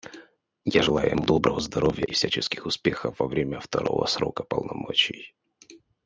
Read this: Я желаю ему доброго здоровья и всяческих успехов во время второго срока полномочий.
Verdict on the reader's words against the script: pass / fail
pass